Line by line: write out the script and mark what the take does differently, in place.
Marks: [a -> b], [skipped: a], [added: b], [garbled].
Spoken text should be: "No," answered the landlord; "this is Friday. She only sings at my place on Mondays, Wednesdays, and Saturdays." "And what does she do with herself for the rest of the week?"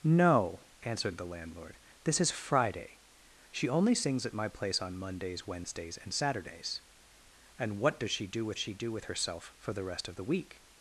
"No," answered the landlord; "this is Friday. She only sings at my place on Mondays, Wednesdays, and Saturdays." "And what does she do with [added: she do with] herself for the rest of the week?"